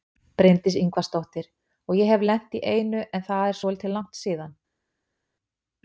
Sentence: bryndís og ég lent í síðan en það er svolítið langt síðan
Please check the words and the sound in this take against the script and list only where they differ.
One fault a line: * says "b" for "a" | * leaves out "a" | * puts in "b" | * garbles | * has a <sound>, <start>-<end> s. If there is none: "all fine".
* puts in "ingvarsdóttir"
* puts in "hef"
* says "einu" for "síðan"